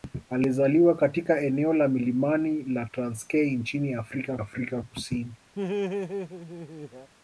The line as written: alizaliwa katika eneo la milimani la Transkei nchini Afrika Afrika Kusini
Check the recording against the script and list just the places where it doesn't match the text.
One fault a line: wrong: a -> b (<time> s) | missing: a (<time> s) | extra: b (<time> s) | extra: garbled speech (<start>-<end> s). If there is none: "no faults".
no faults